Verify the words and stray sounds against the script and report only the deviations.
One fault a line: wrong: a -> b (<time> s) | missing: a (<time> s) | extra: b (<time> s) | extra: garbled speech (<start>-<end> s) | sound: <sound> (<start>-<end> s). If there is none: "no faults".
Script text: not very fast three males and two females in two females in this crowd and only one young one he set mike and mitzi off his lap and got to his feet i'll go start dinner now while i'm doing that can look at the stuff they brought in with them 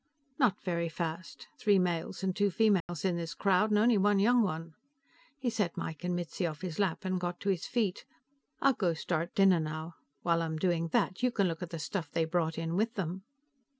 sound: dropout (2.8-2.9 s)
missing: two females in (3.2 s)
extra: you (11.2 s)